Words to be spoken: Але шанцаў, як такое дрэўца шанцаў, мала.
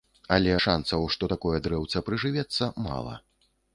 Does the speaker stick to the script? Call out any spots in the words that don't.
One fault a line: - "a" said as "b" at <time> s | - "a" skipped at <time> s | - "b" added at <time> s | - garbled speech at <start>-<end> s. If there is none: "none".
- "як" said as "што" at 1.2 s
- "шанцаў" said as "прыжывецца" at 2.1 s